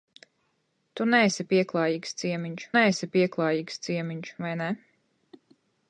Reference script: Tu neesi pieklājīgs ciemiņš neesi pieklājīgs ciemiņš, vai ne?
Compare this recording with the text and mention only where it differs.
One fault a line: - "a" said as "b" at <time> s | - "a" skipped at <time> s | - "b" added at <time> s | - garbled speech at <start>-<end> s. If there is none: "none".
none